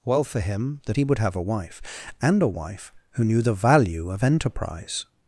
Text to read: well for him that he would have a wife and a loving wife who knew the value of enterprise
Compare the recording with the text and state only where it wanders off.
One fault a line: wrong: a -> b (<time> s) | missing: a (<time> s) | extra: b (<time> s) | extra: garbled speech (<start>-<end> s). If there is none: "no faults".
missing: loving (2.5 s)